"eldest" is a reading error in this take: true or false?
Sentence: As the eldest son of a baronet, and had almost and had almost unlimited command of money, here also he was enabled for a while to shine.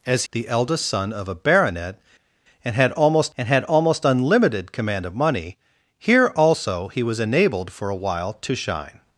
false